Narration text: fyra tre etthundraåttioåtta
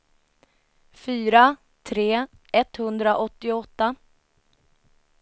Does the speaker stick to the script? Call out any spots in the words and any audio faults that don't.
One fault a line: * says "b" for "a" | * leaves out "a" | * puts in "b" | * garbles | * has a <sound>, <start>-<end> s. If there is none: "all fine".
all fine